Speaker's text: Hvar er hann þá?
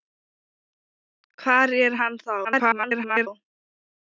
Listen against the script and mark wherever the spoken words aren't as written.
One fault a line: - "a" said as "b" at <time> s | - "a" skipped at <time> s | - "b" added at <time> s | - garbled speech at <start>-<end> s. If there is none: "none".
- garbled speech at 2.4-3.3 s